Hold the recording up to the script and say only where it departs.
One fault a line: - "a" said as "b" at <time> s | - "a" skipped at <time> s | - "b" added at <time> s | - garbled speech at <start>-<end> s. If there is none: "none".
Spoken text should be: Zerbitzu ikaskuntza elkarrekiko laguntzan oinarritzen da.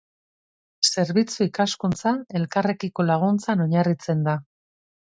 none